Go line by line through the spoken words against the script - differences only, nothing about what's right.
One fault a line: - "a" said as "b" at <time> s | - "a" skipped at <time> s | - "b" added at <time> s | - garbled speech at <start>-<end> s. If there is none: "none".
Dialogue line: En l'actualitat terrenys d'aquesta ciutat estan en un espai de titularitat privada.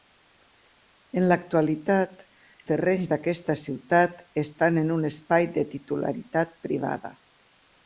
none